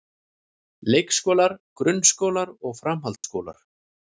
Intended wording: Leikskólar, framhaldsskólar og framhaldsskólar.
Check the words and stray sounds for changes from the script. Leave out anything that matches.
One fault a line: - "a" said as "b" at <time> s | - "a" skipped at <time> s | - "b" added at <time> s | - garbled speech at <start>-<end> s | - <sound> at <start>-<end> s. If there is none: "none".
- "framhaldsskólar" said as "grunnskólar" at 1.8 s
- dropout at 3.2-3.2 s